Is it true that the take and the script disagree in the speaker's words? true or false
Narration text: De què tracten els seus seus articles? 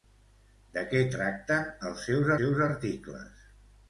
false